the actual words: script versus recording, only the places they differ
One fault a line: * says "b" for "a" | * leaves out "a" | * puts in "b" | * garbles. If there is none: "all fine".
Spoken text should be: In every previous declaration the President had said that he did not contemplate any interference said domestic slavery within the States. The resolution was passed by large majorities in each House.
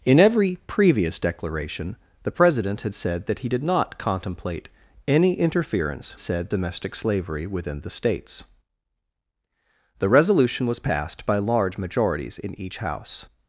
all fine